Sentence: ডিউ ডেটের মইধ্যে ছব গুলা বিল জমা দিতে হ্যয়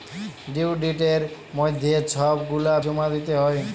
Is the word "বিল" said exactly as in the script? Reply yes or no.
no